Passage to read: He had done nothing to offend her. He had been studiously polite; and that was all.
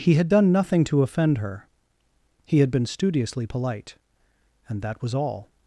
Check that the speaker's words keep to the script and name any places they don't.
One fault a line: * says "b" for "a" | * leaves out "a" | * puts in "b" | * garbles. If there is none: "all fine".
all fine